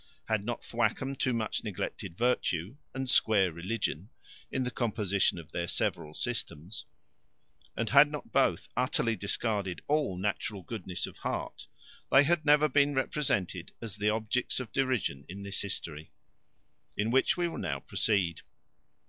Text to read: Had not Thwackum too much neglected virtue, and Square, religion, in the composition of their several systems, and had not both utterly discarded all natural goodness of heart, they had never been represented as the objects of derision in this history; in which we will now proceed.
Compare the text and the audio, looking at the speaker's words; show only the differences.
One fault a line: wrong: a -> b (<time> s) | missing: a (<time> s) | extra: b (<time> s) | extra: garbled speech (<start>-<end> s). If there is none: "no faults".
no faults